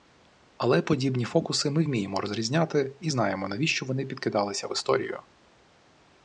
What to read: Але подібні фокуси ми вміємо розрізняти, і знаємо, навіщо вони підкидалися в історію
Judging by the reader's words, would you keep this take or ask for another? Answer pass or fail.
pass